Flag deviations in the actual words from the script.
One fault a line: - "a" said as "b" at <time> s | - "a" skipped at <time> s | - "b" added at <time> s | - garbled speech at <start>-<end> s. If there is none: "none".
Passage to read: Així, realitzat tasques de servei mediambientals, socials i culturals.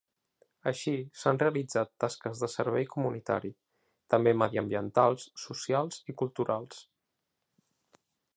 - "s'han" added at 1.2 s
- "comunitari també" added at 2.9 s